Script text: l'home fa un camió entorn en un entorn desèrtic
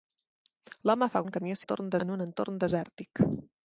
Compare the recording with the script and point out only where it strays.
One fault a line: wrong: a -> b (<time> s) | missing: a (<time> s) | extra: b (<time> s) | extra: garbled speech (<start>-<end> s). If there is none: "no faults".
no faults